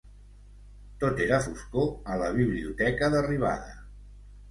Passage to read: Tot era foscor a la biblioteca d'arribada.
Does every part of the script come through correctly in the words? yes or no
yes